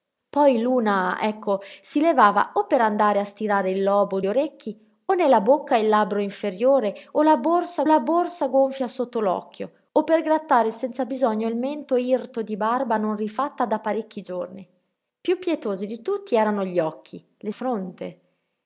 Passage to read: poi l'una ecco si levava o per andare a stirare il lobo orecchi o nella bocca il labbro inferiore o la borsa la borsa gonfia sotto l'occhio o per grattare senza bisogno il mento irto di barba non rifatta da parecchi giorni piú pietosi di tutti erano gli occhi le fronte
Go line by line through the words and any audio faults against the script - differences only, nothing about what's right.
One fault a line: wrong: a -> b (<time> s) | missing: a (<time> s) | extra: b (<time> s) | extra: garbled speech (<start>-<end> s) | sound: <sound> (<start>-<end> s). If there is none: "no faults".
no faults